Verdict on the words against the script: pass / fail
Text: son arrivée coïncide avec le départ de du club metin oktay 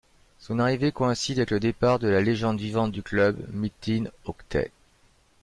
fail